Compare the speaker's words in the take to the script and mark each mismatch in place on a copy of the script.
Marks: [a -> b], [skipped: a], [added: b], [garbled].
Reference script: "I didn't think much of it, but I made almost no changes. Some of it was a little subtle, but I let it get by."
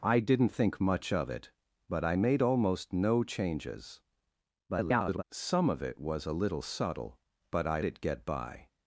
"I didn't think much of it, but I made almost no changes. [garbled] Some of it was a little subtle, but I [skipped: let] it get by."